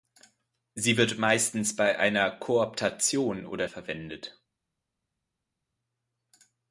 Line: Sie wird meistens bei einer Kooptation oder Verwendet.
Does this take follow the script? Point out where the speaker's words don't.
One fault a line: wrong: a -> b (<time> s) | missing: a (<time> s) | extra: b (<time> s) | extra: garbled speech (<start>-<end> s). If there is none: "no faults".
no faults